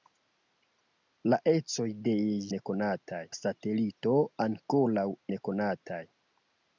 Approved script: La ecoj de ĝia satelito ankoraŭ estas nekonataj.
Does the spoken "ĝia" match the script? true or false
false